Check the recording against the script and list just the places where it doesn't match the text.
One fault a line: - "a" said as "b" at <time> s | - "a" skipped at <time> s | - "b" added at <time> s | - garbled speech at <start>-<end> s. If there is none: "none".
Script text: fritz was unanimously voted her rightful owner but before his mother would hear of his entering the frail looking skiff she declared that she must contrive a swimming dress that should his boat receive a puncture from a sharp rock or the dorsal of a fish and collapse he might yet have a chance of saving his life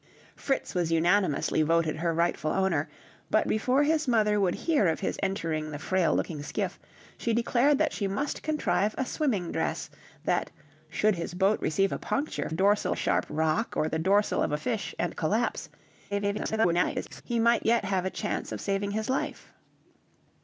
- "from" said as "dorsal" at 12.5 s
- garbled speech at 16.1-17.2 s